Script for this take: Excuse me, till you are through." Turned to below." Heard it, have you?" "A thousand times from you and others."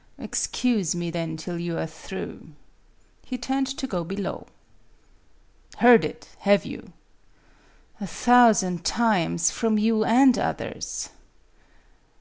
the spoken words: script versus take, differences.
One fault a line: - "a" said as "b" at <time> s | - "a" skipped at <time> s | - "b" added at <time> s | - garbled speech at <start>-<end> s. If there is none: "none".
- "then" added at 1.1 s
- "He" added at 3.3 s
- "go" added at 3.9 s